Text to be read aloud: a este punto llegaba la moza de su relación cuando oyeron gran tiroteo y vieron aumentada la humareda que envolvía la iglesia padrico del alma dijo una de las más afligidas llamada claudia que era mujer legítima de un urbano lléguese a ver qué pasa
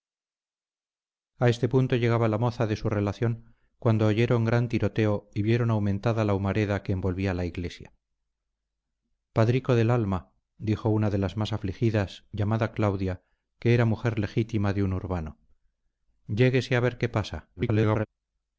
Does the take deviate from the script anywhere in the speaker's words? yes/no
yes